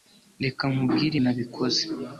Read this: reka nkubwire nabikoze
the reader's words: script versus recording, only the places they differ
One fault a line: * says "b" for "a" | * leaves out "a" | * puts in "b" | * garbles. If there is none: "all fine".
all fine